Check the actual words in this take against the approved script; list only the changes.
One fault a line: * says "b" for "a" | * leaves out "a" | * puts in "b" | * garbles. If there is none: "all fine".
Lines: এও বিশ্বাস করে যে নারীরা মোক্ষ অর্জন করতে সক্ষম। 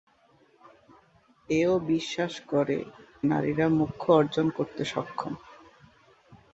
* leaves out "যে"